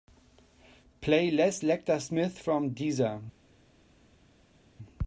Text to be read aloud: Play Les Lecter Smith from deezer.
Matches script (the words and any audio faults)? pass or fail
pass